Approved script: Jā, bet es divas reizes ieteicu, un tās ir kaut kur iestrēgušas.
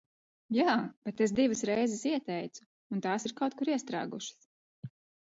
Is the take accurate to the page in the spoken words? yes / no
yes